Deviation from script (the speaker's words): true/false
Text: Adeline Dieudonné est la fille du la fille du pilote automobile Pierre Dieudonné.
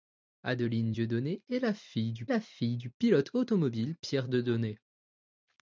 false